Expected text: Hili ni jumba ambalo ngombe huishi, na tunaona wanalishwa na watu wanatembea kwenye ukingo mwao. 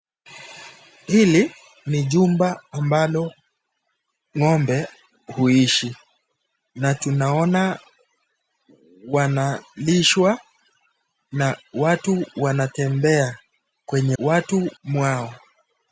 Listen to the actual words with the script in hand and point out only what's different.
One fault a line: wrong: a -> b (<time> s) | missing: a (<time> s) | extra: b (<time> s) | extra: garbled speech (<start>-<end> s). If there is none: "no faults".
wrong: ukingo -> watu (14.2 s)